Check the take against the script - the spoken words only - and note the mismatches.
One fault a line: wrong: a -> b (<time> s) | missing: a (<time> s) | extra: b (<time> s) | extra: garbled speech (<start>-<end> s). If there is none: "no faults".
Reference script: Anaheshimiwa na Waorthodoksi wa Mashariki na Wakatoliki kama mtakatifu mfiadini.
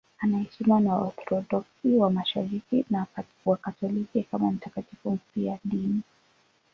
no faults